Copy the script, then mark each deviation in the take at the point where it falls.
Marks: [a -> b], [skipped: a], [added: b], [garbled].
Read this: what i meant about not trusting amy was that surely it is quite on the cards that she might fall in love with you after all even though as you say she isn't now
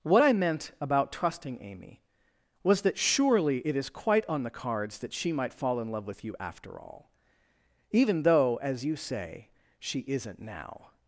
what i meant about [skipped: not] trusting amy was that surely it is quite on the cards that she might fall in love with you after all even though as you say she isn't now